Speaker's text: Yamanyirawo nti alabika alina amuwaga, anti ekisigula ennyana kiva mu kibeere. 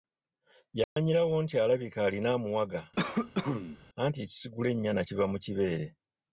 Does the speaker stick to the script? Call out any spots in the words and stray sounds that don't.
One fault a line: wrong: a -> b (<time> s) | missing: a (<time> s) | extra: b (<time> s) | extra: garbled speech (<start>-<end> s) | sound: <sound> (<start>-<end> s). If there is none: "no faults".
sound: dropout (0.8-1.0 s)
sound: cough (3.0-3.8 s)